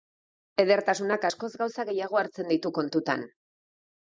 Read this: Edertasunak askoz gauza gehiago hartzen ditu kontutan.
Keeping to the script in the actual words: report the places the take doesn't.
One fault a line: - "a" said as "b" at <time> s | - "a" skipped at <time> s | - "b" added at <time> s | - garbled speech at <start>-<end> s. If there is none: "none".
none